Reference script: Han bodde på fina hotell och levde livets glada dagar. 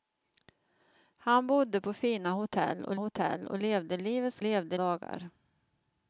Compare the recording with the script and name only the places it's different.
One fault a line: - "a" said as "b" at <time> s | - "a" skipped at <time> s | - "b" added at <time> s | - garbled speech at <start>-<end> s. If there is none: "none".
- "hotell och" added at 2.9 s
- "glada" said as "levde" at 4.4 s